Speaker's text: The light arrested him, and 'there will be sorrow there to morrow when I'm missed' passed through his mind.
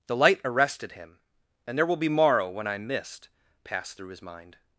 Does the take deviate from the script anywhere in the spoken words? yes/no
yes